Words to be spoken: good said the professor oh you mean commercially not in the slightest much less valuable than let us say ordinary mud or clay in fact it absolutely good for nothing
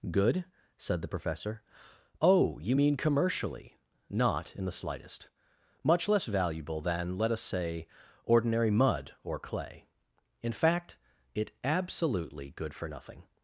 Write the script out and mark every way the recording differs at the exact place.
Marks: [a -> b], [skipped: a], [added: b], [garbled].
good said the professor oh you mean commercially not in the slightest much less valuable than let us say ordinary mud or clay in fact it absolutely good for nothing